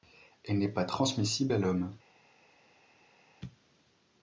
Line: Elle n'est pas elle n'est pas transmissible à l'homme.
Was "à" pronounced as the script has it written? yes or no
yes